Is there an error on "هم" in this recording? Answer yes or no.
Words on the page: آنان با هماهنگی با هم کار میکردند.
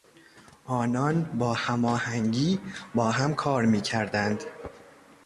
no